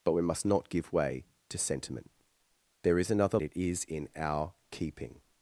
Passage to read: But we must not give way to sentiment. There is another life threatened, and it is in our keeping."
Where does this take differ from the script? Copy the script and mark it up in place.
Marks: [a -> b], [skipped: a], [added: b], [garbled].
But we must not give way to sentiment. There is another [skipped: life threatened, and] it is in our keeping."